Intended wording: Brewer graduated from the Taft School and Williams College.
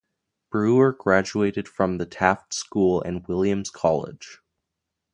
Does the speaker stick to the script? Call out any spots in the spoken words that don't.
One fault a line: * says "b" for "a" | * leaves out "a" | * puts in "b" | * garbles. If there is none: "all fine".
all fine